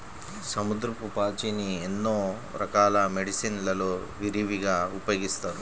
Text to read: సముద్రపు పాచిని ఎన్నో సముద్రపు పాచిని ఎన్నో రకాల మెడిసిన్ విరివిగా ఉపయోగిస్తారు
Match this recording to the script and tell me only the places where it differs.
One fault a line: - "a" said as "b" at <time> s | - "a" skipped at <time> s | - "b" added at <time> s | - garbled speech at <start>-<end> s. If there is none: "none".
- "సముద్రపు పాచిని ఎన్నో" skipped at 2.1 s
- "లలో" added at 3.7 s